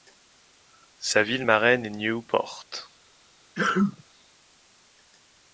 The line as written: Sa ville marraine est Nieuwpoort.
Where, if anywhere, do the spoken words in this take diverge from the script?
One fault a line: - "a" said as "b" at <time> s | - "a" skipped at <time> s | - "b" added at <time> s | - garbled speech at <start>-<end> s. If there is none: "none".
none